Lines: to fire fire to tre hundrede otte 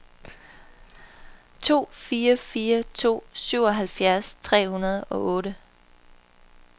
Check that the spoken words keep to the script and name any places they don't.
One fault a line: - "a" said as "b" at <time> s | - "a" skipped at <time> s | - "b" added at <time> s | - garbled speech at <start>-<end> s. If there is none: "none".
- "syvoghalvfjerds" added at 3.3 s
- "og" added at 5.0 s